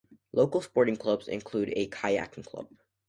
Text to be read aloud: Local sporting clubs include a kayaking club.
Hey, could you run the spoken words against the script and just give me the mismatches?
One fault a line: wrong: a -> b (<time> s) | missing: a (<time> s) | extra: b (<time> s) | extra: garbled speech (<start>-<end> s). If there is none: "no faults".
no faults